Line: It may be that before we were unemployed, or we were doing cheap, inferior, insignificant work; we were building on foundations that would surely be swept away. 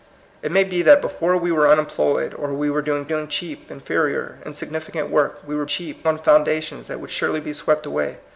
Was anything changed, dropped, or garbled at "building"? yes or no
yes